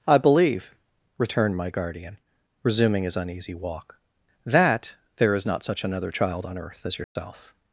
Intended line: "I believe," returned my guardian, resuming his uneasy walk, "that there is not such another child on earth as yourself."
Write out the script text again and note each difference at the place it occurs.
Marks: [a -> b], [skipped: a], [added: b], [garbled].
"I believe," returned my guardian, resuming his uneasy walk, "that there is not such another child on earth as yourself."